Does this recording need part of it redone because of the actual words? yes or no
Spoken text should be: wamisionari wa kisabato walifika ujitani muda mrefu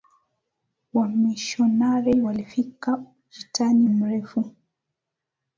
yes